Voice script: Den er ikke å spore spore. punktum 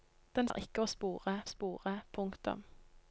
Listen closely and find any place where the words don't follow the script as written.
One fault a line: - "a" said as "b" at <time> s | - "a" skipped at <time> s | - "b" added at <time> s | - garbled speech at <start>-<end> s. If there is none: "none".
none